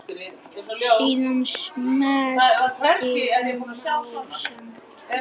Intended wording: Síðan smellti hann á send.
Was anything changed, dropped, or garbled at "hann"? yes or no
yes